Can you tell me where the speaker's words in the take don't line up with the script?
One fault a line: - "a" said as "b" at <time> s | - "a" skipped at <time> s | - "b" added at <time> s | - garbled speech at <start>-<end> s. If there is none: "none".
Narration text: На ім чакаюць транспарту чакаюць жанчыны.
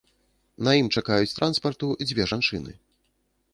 - "чакаюць" said as "дзве" at 2.1 s